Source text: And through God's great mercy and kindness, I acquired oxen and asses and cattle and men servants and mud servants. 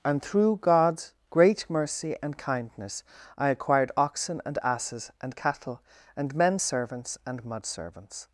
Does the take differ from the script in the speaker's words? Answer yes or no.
no